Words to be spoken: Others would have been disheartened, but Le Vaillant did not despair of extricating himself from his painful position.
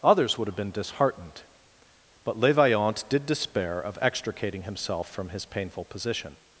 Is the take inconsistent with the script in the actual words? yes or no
yes